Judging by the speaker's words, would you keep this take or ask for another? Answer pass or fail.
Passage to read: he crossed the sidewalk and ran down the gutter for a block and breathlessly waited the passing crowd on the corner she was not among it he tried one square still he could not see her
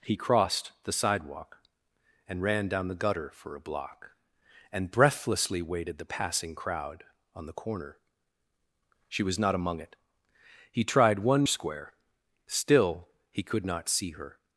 pass